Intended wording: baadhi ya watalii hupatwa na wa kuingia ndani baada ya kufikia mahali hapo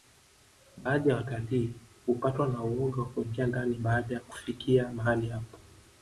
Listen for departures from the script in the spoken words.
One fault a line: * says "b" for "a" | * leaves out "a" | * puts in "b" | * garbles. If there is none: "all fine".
* puts in "uoga"